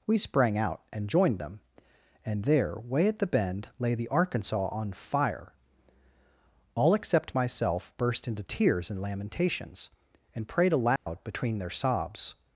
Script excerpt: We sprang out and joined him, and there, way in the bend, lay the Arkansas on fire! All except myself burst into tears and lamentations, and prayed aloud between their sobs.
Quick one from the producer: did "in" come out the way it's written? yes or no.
no